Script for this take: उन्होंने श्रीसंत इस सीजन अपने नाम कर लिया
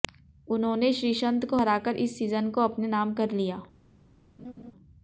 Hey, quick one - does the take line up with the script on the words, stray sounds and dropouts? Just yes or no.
no